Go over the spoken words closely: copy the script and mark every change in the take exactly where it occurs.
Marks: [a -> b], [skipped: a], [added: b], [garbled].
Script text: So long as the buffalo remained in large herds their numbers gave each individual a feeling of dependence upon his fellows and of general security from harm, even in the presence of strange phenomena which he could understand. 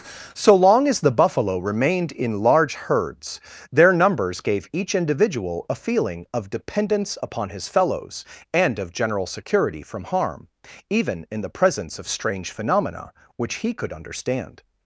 So long as the buffalo remained in large herds their numbers gave each individual a feeling of dependence upon his fellows and of general security from harm, even in the presence of strange phenomena which he could understand.